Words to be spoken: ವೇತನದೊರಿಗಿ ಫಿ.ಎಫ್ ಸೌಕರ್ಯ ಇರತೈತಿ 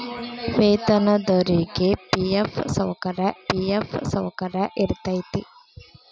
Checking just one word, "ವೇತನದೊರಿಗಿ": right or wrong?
right